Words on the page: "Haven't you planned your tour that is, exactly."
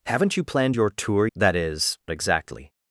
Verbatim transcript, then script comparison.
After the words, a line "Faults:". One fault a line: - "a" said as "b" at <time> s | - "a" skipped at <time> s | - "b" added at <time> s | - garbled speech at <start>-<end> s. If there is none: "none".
"Haven't you planned your tour that is, exactly."
Faults:
none